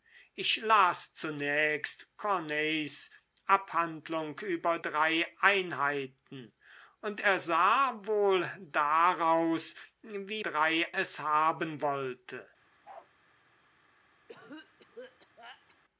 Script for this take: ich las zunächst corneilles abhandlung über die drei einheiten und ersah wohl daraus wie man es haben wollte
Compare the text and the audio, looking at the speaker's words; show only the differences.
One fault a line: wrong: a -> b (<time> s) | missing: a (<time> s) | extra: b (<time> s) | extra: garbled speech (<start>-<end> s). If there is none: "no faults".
missing: die (4.8 s)
wrong: man -> drei (10.4 s)